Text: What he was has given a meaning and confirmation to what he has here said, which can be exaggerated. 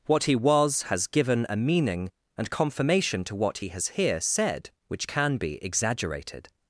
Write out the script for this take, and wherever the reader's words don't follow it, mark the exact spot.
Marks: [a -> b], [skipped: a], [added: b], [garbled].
What he was has given a meaning and confirmation to what he has here said, which can be exaggerated.